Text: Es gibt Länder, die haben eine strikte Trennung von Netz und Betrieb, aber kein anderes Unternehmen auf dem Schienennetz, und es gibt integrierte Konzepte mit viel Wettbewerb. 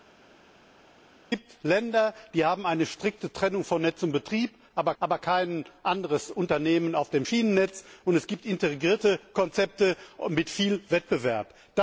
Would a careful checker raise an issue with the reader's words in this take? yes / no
yes